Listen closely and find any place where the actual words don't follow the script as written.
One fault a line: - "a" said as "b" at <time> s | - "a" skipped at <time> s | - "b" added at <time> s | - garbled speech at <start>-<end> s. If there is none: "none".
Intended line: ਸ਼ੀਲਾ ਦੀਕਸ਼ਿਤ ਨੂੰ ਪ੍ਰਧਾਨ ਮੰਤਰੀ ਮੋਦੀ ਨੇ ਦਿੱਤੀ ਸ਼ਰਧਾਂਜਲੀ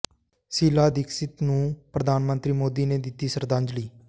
none